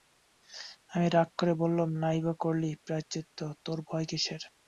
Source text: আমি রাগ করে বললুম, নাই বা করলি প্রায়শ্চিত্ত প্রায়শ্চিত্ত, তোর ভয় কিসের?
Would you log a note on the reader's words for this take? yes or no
yes